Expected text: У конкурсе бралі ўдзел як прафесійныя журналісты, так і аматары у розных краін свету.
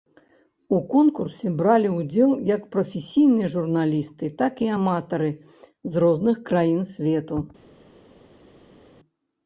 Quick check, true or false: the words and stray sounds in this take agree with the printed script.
false